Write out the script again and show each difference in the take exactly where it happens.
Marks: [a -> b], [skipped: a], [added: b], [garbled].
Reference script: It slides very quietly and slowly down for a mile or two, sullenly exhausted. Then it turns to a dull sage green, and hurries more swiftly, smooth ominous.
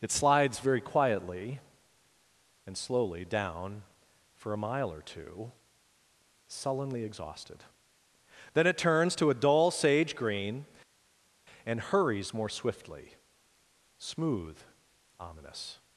It slides very quietly and slowly down for a mile or two, sullenly exhausted. Then it turns to a dull sage green, and hurries more swiftly, smooth ominous.